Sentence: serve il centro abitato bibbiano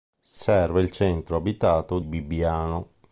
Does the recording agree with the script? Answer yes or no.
yes